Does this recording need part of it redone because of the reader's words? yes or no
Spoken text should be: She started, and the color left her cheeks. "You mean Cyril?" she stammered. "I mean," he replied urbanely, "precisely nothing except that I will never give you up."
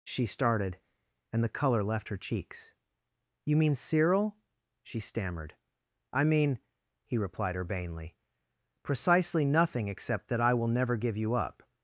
no